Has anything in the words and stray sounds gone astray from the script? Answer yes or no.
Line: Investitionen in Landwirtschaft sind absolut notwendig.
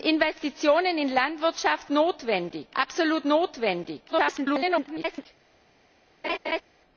yes